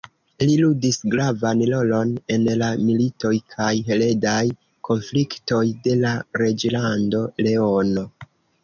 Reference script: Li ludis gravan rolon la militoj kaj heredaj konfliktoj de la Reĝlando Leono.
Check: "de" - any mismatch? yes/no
no